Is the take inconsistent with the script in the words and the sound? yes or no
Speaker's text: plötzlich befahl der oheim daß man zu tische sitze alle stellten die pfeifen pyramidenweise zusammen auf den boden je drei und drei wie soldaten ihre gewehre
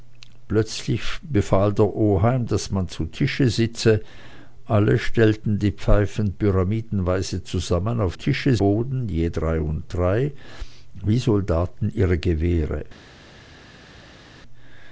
yes